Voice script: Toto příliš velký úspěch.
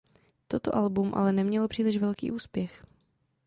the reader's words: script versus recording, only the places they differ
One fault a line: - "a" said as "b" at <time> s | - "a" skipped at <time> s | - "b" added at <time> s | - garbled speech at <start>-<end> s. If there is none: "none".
- "album ale nemělo" added at 0.8 s